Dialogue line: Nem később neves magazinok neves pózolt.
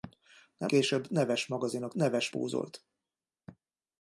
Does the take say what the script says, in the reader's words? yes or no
yes